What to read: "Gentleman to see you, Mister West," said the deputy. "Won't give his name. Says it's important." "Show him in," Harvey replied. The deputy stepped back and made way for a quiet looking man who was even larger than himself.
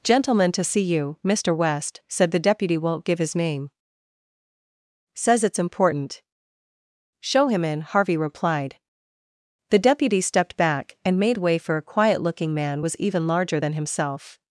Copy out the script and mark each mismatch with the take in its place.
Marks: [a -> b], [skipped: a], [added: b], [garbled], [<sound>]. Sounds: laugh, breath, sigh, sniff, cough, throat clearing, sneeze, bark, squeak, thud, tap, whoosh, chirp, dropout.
"Gentleman to see you, Mister West," said the deputy. "Won't give his name. Says it's important." "Show him in," Harvey replied. The deputy stepped back and made way for a quiet looking man [skipped: who] was even larger than himself.